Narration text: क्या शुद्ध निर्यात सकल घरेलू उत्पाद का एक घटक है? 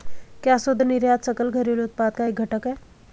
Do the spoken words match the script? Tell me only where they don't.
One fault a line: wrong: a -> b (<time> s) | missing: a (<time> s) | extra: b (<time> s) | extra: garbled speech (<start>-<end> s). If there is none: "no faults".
no faults